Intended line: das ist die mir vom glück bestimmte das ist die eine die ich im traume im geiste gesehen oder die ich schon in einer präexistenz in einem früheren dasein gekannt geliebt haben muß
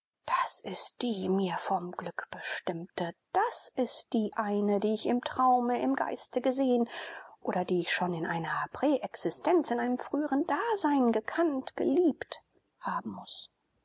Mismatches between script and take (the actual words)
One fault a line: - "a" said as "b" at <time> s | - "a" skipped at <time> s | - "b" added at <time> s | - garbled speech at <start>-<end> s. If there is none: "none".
none